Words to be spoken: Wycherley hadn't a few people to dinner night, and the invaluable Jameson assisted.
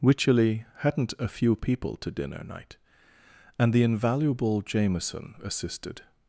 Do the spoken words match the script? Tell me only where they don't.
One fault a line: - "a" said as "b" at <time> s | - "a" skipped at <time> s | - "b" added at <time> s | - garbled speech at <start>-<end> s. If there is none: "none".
none